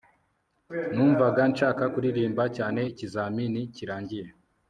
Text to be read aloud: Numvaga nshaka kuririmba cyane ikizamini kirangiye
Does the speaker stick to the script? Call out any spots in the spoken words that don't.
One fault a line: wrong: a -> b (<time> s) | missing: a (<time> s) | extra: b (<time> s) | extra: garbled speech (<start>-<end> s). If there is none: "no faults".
no faults